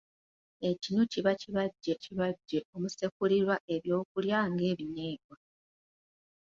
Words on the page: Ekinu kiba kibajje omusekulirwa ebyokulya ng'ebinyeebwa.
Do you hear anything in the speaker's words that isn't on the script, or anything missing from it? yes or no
yes